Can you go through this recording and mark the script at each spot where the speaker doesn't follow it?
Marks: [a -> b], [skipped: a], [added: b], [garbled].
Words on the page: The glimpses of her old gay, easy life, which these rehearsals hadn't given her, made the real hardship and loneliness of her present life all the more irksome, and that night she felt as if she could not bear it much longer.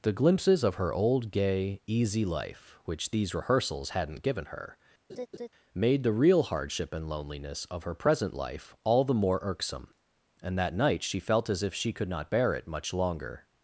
The glimpses of her old gay, easy life, which these rehearsals hadn't given her, made the real hardship and loneliness of her present life all the more irksome, and that night she felt as if she could not bear it much longer.